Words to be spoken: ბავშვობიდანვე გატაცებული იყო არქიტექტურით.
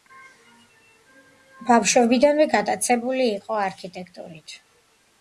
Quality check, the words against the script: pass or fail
pass